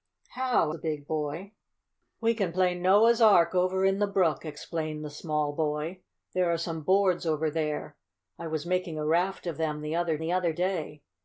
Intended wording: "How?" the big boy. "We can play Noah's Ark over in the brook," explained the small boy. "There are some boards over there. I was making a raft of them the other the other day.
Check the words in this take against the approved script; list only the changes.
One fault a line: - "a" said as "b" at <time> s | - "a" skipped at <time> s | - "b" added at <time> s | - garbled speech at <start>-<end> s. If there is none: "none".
none